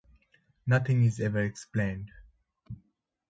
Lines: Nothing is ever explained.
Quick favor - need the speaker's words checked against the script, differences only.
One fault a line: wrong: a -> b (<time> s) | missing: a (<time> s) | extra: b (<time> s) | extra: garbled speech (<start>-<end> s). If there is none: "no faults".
no faults